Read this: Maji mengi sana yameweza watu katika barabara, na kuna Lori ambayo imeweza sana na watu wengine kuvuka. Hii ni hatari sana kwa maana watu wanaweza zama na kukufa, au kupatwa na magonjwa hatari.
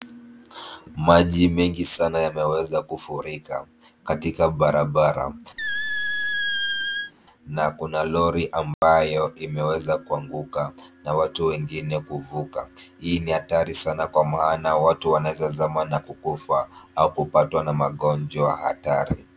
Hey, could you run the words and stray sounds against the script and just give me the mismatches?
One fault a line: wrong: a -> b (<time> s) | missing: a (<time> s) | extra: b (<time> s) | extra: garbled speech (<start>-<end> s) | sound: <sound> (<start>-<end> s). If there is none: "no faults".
wrong: watu -> kufurika (2.8 s)
sound: squeak (5.6-7.1 s)
sound: dropout (8.7-8.8 s)
wrong: sana -> kuanguka (10.0 s)